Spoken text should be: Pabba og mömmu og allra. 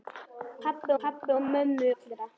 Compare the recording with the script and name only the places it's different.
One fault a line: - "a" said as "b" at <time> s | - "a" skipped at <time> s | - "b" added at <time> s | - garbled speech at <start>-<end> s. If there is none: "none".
- "pabba" added at 1.0 s
- "og" skipped at 1.9 s